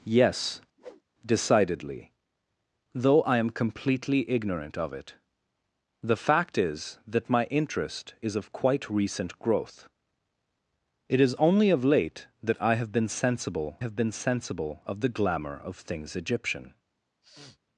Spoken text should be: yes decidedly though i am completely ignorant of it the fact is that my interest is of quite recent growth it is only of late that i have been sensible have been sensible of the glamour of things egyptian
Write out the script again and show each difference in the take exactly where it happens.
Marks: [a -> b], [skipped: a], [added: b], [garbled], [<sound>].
yes [whoosh] decidedly though i am completely ignorant of it the fact is that my interest is of quite recent growth it is only of late that i have been sensible have been sensible of the glamour of things egyptian [sniff]